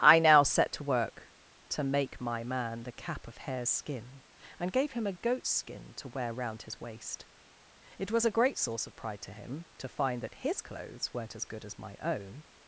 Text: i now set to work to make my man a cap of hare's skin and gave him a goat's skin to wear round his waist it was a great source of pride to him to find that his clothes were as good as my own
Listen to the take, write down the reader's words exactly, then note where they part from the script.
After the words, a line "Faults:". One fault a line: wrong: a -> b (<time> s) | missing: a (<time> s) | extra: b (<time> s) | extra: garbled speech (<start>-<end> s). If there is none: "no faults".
i now set to work to make my man the cap of hare's skin and gave him a goat's skin to wear round his waist it was a great source of pride to him to find that his clothes weren't as good as my own
Faults:
wrong: a -> the (2.8 s)
wrong: were -> weren't (11.1 s)